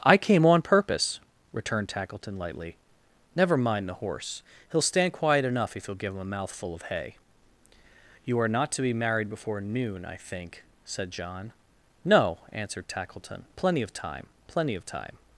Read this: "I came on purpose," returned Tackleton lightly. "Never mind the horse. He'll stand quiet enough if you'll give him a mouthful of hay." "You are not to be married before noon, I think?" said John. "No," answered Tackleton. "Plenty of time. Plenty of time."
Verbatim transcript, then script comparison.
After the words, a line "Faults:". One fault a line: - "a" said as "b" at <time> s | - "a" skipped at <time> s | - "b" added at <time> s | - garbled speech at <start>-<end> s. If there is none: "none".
"I came on purpose," returned Tackleton lightly. "Never mind the horse. He'll stand quiet enough if you'll give him a mouthful of hay." "You are not to be married before noon, I think?" said John. "No," answered Tackleton. "Plenty of time. Plenty of time."
Faults:
none